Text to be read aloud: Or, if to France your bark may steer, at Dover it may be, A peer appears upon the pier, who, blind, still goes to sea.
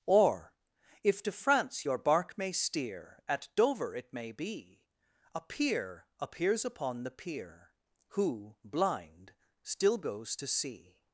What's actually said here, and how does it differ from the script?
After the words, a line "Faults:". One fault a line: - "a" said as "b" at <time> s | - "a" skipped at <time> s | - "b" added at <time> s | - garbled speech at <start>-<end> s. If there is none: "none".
Or, if to France your bark may steer, at Dover it may be, A peer appears upon the pier, who, blind, still goes to sea.
Faults:
none